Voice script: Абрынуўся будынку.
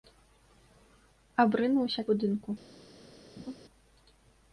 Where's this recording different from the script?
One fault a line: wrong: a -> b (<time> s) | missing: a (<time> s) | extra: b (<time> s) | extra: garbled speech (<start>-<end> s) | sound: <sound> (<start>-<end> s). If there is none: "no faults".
sound: laugh (3.4-3.6 s)